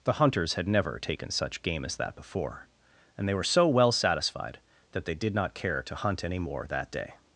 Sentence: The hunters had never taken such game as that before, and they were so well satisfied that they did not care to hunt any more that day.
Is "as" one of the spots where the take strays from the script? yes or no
no